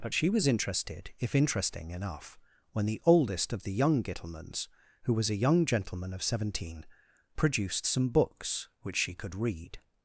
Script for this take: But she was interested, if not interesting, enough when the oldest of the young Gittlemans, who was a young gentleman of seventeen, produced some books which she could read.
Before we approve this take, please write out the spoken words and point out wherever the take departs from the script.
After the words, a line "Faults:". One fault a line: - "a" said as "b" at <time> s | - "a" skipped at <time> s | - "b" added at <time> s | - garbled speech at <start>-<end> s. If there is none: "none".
But she was interested, if interesting, enough when the oldest of the young Gittlemans, who was a young gentleman of seventeen, produced some books which she could read.
Faults:
- "not" skipped at 1.4 s